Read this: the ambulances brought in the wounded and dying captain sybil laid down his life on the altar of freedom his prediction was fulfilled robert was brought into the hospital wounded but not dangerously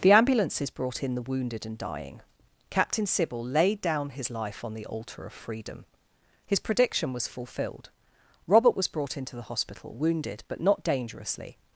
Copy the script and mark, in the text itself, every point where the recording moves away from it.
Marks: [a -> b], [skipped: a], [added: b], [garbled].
the ambulances brought in the wounded and dying captain sybil laid down his life on the altar of freedom his prediction was fulfilled robert was brought into the hospital wounded but not dangerously